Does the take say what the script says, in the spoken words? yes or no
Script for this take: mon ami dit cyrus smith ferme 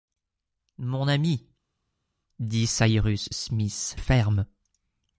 yes